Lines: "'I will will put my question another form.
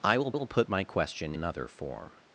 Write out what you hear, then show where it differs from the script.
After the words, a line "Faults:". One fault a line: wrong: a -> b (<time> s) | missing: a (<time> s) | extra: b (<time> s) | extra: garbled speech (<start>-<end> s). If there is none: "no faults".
"'I will will put my question another form.
Faults:
no faults